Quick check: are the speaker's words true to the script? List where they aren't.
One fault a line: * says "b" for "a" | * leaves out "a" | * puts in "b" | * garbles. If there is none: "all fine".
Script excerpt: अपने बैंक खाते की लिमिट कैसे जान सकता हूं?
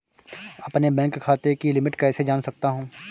all fine